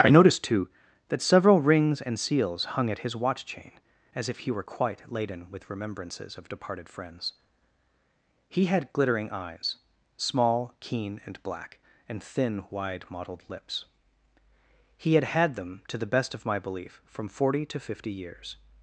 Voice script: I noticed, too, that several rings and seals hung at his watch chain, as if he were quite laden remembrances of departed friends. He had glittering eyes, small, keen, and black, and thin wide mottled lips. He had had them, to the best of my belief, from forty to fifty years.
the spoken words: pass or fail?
fail